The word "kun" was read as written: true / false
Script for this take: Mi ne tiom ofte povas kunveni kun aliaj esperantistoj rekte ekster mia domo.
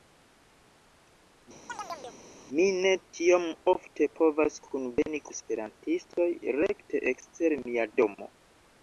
false